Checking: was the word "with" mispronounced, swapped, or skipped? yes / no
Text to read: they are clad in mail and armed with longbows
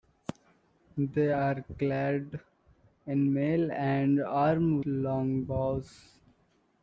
yes